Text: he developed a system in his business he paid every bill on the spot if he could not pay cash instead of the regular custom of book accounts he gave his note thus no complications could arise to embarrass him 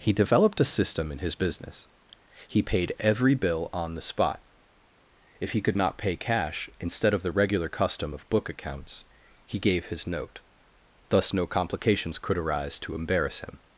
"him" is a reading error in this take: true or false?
false